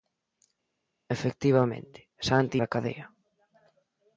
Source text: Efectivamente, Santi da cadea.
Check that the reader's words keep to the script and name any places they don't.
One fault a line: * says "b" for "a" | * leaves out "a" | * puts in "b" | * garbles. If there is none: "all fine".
all fine